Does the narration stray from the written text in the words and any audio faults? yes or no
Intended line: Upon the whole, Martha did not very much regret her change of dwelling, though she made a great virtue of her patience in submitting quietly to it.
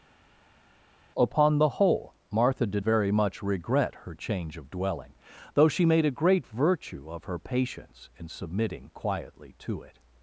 yes